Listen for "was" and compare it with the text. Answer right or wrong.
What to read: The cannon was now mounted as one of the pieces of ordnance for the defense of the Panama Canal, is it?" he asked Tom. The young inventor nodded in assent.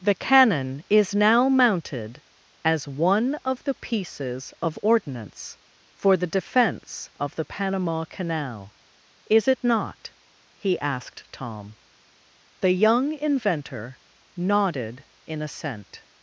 wrong